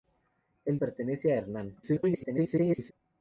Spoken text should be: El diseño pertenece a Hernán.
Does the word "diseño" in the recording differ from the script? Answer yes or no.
yes